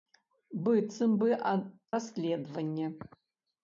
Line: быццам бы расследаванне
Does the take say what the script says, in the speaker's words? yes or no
yes